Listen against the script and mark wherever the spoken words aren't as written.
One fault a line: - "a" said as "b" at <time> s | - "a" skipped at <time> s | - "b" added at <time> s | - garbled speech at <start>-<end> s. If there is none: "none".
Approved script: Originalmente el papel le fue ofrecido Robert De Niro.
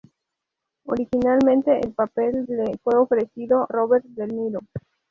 none